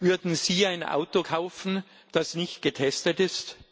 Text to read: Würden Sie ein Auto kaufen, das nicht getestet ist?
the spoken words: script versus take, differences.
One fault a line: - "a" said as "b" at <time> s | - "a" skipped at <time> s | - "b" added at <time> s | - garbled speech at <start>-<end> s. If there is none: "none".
none